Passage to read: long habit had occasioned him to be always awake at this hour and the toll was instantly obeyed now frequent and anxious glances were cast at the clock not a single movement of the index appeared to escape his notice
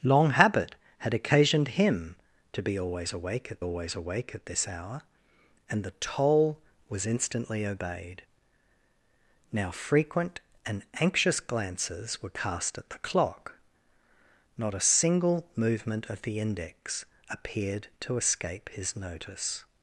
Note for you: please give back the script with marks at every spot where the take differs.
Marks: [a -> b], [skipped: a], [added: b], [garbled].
long habit had occasioned him to be always awake at [added: always awake at] this hour and the toll was instantly obeyed now frequent and anxious glances were cast at the clock not a single movement of the index appeared to escape his notice